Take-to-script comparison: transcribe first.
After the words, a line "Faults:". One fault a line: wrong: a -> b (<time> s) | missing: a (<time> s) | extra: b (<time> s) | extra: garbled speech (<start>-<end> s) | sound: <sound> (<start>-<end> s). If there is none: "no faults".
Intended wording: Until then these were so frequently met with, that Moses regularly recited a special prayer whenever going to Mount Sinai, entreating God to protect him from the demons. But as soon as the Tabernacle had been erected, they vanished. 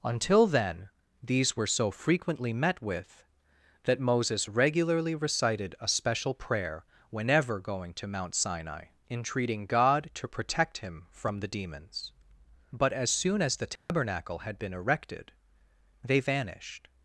Until then these were so frequently met with, that Moses regularly recited a special prayer whenever going to Mount Sinai, entreating God to protect him from the demons. But as soon as the Tabernacle had been erected, they vanished.
Faults:
sound: dropout (13.8-13.9 s)